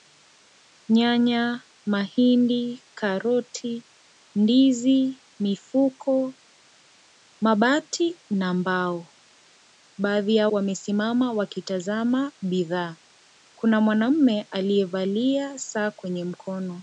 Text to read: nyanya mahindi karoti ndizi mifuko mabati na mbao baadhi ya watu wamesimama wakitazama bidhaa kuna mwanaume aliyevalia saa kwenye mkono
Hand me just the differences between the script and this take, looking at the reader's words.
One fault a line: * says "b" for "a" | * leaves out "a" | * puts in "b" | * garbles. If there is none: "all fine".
* leaves out "watu"